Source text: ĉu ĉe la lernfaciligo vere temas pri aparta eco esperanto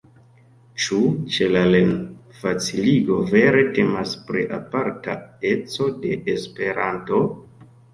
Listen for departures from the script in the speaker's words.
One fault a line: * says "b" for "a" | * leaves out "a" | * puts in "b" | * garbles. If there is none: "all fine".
* puts in "de"